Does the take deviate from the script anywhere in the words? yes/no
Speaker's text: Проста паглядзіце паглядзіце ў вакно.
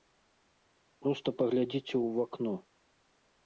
yes